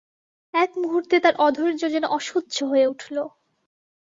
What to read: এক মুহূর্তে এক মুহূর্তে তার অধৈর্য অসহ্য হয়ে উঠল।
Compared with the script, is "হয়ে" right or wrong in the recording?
right